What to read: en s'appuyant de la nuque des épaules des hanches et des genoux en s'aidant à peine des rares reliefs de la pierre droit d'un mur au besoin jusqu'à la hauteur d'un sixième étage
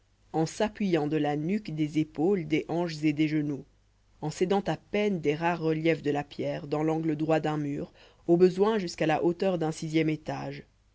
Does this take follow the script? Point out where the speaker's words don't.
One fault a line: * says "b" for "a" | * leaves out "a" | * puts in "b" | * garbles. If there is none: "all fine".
* puts in "dans l'angle"